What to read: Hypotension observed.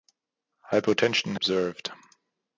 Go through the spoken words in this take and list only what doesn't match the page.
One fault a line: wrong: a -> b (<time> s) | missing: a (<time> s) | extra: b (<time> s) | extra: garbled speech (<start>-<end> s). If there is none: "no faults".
no faults